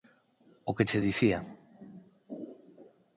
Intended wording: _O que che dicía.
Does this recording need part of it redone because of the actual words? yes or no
no